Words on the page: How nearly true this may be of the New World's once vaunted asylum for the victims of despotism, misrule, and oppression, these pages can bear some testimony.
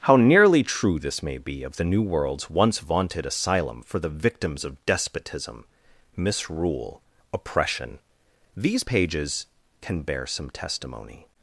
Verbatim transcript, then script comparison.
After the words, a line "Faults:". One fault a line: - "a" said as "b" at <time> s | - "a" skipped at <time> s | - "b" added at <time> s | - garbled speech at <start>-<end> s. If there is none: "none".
How nearly true this may be of the New World's once vaunted asylum for the victims of despotism, misrule, oppression, these pages can bear some testimony.
Faults:
- "and" skipped at 7.0 s